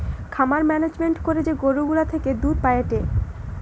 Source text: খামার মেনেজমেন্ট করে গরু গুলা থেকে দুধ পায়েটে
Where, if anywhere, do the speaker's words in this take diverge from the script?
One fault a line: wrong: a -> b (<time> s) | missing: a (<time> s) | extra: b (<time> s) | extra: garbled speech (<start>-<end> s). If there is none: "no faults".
extra: যে (1.4 s)